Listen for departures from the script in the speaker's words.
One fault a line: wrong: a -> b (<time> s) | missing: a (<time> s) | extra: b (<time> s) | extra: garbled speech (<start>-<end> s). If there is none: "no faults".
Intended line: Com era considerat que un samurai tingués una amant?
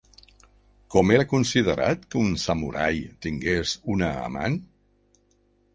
no faults